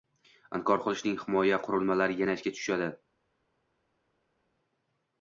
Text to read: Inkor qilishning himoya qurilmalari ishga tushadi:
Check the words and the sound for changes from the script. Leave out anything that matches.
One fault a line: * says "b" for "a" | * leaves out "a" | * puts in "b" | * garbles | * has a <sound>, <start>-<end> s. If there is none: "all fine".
* puts in "yana"